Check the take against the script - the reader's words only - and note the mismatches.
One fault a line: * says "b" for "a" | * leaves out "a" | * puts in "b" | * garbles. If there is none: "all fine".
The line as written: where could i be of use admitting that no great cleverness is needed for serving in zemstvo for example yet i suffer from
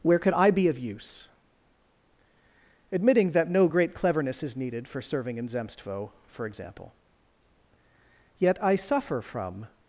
all fine